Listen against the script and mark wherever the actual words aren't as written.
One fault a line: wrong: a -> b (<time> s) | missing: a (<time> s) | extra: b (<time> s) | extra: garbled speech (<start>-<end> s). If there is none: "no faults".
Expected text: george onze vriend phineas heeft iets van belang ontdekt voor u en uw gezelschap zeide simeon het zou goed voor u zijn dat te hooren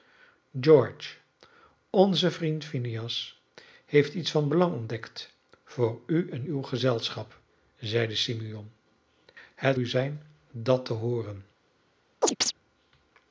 missing: zou goed voor (9.8 s)